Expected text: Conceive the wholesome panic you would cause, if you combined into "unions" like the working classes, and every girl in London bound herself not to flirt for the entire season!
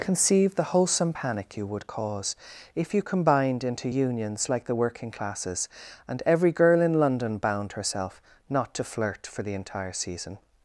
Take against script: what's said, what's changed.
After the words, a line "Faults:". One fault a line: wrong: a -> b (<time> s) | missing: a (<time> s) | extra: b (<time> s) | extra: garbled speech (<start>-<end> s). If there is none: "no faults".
Conceive the wholesome panic you would cause, if you combined into "unions" like the working classes, and every girl in London bound herself not to flirt for the entire season!
Faults:
no faults